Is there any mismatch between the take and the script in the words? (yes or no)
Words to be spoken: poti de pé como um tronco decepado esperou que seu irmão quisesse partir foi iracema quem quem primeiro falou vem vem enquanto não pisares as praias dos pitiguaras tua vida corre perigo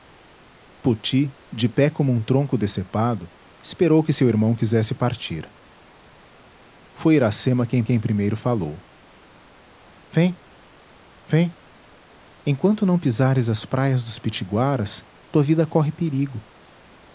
no